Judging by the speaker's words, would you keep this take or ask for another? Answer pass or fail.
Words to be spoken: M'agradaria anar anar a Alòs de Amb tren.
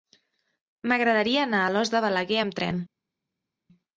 fail